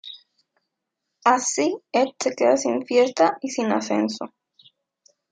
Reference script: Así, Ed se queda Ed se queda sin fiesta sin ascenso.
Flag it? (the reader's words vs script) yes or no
yes